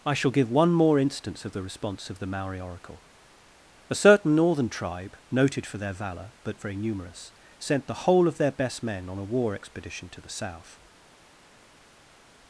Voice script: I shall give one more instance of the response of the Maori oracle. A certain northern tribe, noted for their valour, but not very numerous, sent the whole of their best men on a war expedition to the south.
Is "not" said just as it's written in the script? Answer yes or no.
no